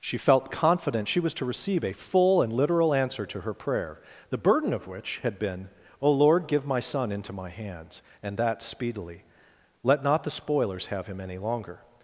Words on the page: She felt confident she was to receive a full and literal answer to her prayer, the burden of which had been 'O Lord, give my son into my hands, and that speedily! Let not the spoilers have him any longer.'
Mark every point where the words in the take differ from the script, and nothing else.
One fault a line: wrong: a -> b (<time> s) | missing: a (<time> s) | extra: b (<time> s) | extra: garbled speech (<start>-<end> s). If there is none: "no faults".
no faults